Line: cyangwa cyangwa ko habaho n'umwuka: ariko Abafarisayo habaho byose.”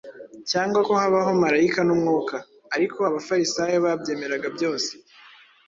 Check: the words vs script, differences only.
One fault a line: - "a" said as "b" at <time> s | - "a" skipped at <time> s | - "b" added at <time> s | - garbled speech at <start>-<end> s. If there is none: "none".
- "cyangwa" skipped at 0.8 s
- "marayika" added at 1.4 s
- "habaho" said as "babyemeraga" at 3.9 s